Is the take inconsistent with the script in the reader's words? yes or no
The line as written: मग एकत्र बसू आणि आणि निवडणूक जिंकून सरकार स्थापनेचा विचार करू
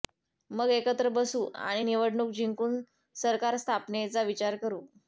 yes